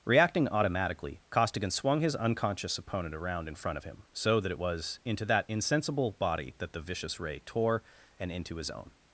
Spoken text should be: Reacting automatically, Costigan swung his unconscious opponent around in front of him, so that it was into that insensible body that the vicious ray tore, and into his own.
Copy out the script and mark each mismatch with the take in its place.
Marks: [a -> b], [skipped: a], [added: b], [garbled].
Reacting automatically, Costigan swung his unconscious opponent around in front of him, so that it was into that insensible body that the vicious ray tore, and into his own.